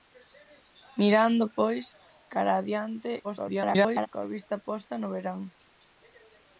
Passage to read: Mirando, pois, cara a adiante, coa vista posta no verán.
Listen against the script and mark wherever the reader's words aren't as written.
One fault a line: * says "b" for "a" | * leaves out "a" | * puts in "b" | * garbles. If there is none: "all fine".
* garbles